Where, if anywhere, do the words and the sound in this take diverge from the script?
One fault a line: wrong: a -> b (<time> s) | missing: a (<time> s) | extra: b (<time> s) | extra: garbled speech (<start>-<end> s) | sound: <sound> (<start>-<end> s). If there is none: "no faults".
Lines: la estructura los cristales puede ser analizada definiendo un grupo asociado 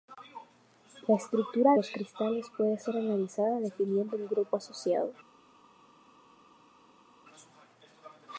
no faults